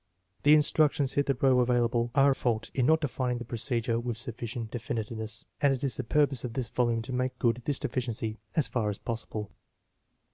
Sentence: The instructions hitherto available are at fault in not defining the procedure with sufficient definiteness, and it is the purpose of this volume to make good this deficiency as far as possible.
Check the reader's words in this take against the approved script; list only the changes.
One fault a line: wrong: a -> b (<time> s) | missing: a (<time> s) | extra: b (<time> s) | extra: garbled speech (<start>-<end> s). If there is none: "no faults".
missing: at (2.4 s)